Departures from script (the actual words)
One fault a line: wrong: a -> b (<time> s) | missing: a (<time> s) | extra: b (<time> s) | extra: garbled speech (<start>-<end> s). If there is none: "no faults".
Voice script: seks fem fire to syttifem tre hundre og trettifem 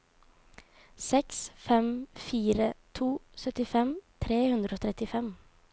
no faults